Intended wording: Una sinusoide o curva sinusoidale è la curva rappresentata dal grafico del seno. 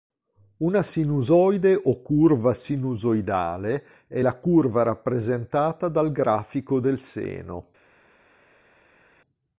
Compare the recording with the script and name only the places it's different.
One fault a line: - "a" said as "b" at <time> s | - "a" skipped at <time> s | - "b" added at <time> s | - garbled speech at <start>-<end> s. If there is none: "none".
none